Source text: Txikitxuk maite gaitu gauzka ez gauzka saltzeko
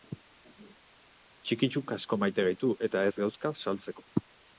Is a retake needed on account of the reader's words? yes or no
yes